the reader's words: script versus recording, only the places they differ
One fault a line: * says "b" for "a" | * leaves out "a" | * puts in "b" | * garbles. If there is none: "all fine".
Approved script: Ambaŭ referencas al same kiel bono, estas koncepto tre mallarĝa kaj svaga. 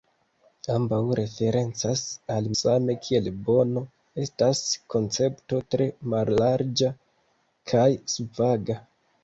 all fine